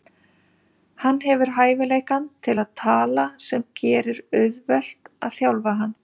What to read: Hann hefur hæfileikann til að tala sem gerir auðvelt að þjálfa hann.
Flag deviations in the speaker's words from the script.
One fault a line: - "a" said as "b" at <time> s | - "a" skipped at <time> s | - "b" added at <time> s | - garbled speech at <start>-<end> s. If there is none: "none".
none